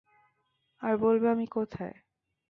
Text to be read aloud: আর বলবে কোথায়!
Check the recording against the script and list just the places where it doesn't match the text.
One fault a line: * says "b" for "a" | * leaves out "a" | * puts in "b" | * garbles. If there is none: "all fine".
* puts in "আমি"